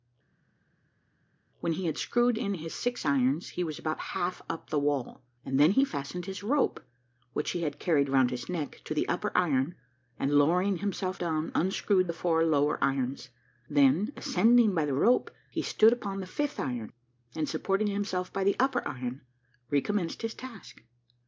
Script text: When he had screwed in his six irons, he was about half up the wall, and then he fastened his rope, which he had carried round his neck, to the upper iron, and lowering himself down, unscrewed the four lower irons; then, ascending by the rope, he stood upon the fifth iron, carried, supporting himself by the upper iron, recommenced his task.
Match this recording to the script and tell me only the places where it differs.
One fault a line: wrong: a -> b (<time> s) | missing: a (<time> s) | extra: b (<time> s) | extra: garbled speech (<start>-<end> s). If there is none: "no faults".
wrong: carried -> and (17.4 s)